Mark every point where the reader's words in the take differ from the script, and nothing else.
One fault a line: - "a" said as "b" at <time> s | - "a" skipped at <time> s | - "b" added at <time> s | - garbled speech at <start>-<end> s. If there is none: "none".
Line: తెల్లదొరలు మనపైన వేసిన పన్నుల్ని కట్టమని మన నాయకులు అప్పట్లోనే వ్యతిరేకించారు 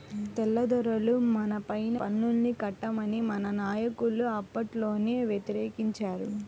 - "వేసిన" skipped at 2.0 s